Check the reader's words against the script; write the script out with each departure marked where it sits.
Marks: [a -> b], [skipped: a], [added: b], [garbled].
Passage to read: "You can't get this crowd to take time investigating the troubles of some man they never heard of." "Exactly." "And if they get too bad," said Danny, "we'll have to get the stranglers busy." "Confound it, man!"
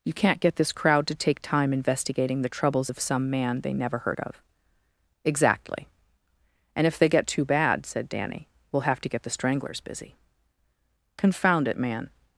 "You can't get this crowd to take time investigating the troubles of some man they never heard of." "Exactly." "And if they get too bad," said Danny, "we'll have to get the stranglers busy." "Confound it, man!"